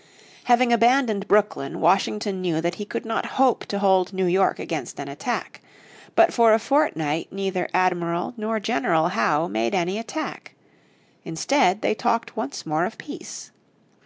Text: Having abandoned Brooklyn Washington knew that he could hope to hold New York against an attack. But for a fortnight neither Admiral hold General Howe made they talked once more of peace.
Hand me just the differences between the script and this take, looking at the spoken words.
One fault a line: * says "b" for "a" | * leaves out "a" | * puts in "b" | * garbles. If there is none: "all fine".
* puts in "not"
* says "nor" for "hold"
* puts in "any attack Instead"